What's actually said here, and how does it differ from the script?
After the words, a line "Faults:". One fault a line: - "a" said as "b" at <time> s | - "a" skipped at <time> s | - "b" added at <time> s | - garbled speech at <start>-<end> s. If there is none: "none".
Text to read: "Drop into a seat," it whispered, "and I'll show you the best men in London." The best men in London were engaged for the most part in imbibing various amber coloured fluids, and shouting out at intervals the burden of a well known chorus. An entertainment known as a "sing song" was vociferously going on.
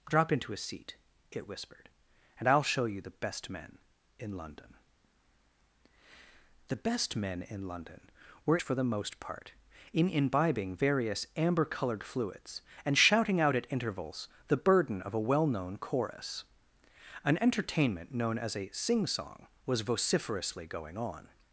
"Drop into a seat," it whispered, "and I'll show you the best men in London." The best men in London were for the most part in imbibing various amber coloured fluids, and shouting out at intervals the burden of a well known chorus. An entertainment known as a "sing song" was vociferously going on.
Faults:
- "engaged" skipped at 8.6 s